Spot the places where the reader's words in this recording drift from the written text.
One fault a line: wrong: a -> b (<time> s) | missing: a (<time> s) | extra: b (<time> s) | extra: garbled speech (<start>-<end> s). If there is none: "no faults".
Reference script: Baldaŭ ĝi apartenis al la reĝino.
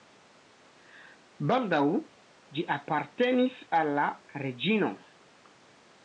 no faults